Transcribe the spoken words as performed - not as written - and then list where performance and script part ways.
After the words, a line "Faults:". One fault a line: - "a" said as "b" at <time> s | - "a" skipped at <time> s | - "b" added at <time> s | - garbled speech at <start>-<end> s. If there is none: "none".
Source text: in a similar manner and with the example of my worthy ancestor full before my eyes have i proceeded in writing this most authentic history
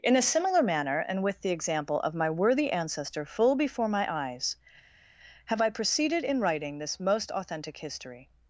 in a similar manner and with the example of my worthy ancestor full before my eyes have i proceeded in writing this most authentic history
Faults:
none